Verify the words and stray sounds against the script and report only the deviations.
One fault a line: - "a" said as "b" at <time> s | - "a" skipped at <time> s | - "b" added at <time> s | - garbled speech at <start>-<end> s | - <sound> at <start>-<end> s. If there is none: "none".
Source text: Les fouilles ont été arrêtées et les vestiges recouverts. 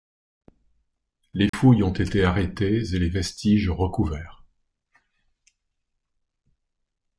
- dropout at 1.5-1.5 s